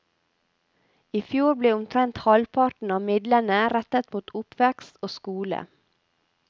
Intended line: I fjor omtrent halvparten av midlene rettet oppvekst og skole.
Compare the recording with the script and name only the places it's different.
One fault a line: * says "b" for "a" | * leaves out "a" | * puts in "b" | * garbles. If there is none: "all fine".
* puts in "ble"
* puts in "mot"